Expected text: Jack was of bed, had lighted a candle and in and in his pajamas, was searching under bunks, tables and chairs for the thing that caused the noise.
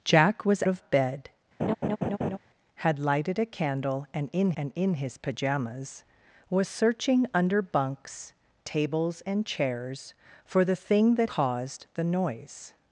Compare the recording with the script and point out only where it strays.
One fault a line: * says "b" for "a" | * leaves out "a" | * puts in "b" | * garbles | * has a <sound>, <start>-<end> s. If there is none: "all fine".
* has a laugh, 1.6-2.4 s